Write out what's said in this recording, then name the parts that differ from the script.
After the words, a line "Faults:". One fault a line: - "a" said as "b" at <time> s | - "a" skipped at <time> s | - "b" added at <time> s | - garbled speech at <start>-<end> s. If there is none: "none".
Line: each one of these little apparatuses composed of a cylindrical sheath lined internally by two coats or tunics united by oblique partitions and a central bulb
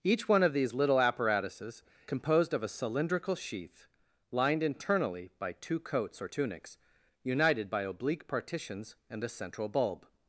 each one of these little apparatuses composed of a cylindrical sheath lined internally by two coats or tunics united by oblique partitions and a central bulb
Faults:
none